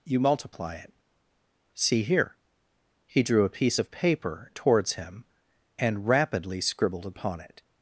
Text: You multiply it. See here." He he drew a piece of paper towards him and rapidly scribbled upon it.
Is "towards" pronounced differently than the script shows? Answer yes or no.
no